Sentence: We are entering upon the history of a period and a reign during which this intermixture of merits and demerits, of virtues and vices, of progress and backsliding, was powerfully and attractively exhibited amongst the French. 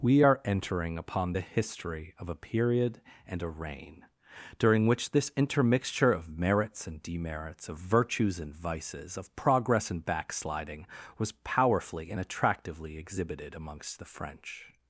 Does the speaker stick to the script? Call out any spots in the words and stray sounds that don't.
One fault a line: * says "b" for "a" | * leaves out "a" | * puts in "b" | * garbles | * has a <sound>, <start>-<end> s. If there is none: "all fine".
all fine